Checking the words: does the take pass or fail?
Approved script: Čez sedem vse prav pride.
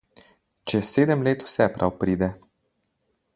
fail